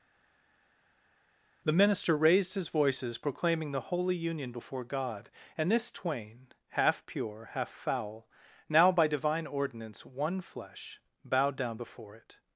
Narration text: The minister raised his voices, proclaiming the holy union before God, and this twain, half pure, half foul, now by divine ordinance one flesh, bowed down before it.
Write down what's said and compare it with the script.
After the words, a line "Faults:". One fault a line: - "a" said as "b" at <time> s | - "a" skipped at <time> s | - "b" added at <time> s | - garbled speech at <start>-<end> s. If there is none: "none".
The minister raised his voices, proclaiming the holy union before God, and this twain, half pure, half foul, now by divine ordinance one flesh, bowed down before it.
Faults:
none